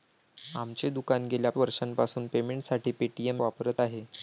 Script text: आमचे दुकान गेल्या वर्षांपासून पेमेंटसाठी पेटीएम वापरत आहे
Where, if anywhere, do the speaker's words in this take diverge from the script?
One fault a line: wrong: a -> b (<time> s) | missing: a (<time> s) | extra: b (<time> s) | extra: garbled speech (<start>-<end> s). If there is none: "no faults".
no faults